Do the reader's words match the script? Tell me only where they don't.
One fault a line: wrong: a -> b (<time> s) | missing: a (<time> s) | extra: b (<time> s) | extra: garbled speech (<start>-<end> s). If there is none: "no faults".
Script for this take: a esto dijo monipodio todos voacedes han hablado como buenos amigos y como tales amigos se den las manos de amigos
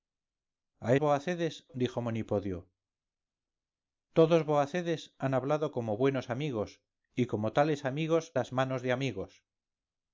wrong: esto -> voacedes (1.0 s)
missing: se den (8.4 s)